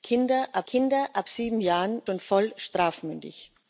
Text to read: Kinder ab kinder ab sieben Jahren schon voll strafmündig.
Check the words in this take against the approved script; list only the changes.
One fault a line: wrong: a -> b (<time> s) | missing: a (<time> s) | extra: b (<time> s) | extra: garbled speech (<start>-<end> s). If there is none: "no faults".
no faults